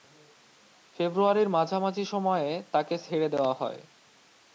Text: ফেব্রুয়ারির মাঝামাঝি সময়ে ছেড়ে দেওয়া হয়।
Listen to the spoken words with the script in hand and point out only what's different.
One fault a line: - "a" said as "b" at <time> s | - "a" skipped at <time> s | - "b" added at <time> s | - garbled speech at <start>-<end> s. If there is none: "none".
- "তাকে" added at 2.7 s